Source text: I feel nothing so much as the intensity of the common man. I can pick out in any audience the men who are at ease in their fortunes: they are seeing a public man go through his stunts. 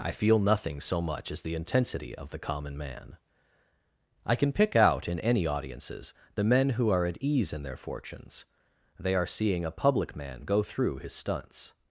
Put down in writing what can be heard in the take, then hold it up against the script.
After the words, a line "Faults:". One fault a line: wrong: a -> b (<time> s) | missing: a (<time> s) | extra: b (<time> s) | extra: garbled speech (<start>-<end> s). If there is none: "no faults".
I feel nothing so much as the intensity of the common man. I can pick out in any audiences the men who are at ease in their fortunes: they are seeing a public man go through his stunts.
Faults:
wrong: audience -> audiences (5.5 s)